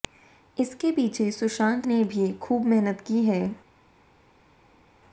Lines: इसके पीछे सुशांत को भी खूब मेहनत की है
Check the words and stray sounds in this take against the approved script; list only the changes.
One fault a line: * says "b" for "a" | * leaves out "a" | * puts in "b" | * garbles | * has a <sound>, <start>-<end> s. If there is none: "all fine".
* says "ने" for "को"